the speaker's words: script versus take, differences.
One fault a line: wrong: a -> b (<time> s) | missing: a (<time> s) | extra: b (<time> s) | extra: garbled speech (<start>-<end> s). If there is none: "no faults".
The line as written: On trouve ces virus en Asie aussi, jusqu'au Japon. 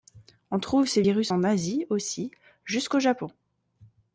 no faults